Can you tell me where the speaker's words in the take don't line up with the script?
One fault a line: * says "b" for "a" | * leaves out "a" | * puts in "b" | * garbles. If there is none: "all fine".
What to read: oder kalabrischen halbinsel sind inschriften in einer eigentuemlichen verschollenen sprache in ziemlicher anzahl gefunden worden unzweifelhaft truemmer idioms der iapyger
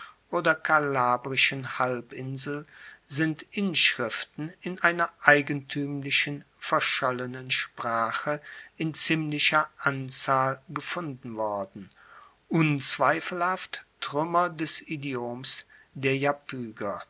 * puts in "des"